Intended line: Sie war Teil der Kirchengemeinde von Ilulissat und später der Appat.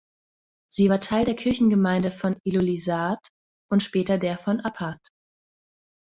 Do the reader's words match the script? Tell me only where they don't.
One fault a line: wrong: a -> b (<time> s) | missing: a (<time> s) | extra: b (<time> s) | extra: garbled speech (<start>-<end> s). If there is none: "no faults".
extra: von (4.4 s)